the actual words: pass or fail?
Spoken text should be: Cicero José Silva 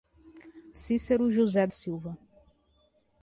pass